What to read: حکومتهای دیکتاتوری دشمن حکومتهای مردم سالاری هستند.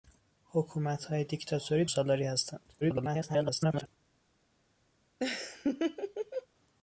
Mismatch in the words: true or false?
true